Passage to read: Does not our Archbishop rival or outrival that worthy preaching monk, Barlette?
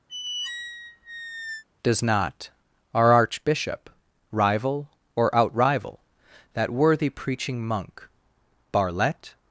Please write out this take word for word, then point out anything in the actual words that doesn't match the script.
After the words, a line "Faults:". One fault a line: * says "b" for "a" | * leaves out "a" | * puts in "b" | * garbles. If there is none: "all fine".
Does not our Archbishop rival or outrival that worthy preaching monk, Barlette?
Faults:
all fine